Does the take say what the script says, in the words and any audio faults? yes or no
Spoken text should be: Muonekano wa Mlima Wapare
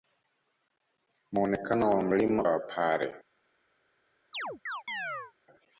no